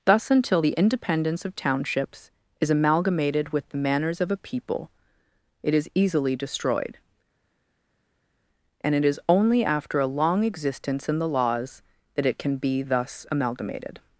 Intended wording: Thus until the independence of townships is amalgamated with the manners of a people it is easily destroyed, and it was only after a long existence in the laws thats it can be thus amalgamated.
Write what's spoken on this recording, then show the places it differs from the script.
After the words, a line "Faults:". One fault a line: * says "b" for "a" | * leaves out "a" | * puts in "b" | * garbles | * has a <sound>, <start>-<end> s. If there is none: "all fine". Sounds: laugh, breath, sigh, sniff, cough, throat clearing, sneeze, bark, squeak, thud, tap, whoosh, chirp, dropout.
Thus until the independence of townships is amalgamated with the manners of a people it is easily destroyed, and it is only after a long existence in the laws that it can be thus amalgamated.
Faults:
* says "is" for "was"
* says "that" for "thats"